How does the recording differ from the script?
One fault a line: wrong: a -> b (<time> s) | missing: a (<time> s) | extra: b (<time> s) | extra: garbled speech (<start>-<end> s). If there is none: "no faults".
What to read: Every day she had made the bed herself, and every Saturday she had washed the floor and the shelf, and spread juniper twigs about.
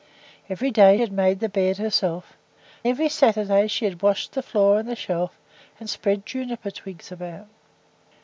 missing: she (1.0 s)
missing: and (2.3 s)